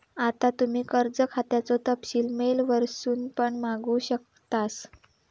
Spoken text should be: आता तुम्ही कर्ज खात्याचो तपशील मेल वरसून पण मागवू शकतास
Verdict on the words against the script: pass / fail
pass